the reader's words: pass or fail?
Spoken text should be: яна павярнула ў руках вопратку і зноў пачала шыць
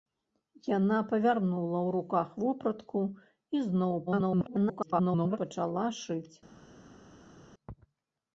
fail